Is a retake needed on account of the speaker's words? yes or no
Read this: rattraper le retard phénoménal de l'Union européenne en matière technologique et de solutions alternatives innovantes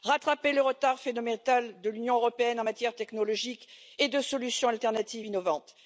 no